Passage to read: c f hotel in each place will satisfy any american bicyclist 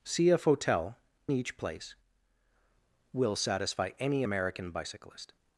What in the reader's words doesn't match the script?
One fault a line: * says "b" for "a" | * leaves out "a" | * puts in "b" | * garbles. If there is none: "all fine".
* leaves out "in"